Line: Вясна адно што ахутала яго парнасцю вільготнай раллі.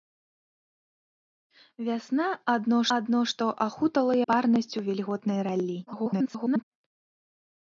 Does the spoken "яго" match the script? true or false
false